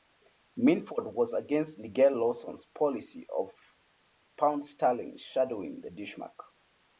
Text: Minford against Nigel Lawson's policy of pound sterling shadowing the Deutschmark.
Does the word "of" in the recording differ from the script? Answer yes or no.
no